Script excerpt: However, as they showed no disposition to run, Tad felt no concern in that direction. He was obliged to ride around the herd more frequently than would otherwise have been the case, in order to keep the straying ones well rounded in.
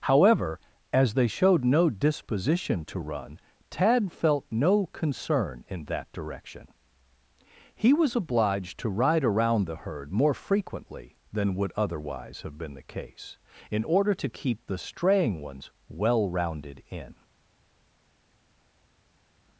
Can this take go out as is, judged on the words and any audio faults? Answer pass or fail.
pass